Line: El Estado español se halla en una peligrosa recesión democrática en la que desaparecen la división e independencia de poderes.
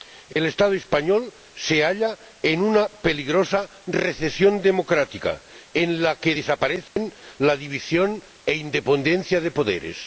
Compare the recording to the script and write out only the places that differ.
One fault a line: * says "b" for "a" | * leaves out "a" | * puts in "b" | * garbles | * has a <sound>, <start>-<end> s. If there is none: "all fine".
* has a dropout, 0.3-0.4 s
* has a dropout, 6.9-7.0 s